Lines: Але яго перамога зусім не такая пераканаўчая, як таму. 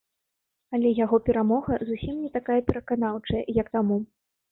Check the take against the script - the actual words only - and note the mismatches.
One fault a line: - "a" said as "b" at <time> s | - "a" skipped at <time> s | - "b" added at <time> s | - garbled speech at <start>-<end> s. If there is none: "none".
none